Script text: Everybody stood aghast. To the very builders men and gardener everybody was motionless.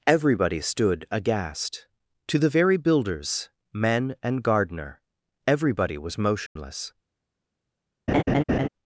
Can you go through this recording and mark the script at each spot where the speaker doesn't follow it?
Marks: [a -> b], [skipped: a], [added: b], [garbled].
Everybody stood aghast. To the very builders men and gardener everybody was motionless.